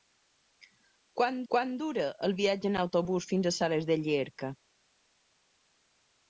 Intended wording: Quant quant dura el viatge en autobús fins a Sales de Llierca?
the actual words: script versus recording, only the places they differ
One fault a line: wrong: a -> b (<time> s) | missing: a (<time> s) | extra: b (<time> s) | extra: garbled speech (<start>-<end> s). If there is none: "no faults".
no faults